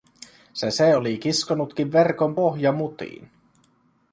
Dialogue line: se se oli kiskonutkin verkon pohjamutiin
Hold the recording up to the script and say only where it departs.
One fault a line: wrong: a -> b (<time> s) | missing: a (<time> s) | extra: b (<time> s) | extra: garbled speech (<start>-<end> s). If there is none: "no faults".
no faults